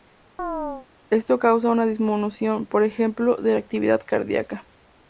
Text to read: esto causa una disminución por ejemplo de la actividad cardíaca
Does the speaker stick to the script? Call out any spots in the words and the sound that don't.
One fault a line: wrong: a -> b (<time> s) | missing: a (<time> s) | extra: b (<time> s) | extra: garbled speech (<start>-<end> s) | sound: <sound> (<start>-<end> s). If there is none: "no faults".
sound: chirp (0.4-0.9 s)